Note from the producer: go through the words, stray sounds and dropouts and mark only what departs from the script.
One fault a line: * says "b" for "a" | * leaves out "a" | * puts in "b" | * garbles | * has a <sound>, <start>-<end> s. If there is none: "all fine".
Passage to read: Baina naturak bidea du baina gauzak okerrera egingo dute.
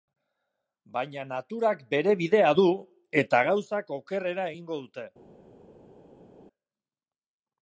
* puts in "bere"
* says "eta" for "baina"